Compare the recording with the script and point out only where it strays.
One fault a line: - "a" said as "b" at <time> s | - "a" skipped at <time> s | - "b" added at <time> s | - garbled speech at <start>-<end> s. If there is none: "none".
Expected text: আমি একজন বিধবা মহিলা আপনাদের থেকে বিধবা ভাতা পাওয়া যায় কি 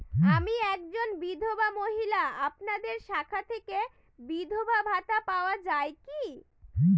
- "শাখা" added at 3.1 s